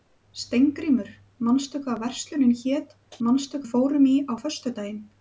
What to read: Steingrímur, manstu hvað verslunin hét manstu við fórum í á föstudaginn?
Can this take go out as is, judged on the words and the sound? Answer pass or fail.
pass